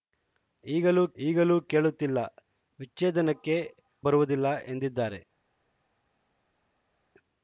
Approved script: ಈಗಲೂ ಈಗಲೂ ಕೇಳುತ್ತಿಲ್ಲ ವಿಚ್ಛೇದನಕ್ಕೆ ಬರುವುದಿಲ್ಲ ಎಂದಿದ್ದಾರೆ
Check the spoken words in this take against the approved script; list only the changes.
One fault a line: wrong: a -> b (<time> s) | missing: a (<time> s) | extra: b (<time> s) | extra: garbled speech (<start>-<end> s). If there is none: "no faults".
no faults